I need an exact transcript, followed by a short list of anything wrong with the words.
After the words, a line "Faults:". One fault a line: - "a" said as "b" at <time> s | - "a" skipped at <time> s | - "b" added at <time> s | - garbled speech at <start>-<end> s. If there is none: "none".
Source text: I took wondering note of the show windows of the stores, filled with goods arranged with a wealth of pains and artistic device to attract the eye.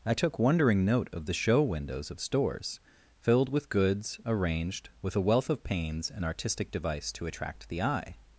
I took wondering note of the show windows of stores, filled with goods arranged with a wealth of pains and artistic device to attract the eye.
Faults:
- "the" skipped at 2.2 s